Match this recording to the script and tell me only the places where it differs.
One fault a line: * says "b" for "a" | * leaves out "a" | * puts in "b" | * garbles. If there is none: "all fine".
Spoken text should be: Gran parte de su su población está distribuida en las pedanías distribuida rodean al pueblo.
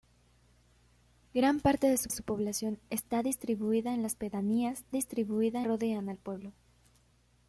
all fine